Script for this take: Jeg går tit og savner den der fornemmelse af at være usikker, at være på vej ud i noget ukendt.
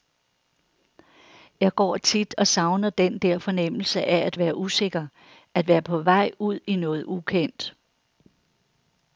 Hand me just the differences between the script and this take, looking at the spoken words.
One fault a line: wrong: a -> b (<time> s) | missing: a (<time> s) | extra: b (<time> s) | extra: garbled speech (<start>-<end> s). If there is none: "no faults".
no faults